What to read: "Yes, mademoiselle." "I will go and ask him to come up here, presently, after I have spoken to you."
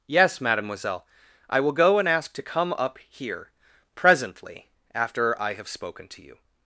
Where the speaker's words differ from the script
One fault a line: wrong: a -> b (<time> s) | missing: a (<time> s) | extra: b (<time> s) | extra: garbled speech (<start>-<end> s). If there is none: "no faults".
missing: him (2.3 s)